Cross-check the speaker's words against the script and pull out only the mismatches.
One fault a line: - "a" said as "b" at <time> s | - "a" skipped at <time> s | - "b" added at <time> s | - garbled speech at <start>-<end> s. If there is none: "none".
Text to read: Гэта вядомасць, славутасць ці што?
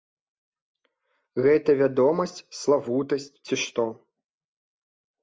none